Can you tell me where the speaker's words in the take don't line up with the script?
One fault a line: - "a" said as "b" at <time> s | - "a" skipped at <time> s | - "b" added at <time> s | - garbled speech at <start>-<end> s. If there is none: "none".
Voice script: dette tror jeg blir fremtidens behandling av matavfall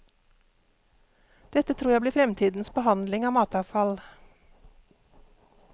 none